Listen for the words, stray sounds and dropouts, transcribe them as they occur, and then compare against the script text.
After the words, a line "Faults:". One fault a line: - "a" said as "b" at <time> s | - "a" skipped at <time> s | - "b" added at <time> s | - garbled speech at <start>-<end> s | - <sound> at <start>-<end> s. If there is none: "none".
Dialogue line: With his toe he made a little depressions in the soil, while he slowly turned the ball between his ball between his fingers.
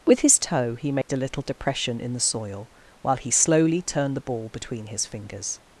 With his toe he made a little depression in the soil, while he slowly turned the ball between his fingers.
Faults:
- dropout at 1.0-1.1 s
- "depressions" said as "depression" at 1.4 s
- "ball between his" skipped at 5.0 s